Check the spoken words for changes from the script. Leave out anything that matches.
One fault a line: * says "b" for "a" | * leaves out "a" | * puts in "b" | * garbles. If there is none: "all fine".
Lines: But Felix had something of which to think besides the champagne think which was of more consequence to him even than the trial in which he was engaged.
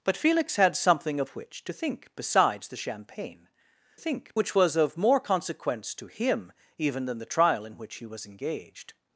all fine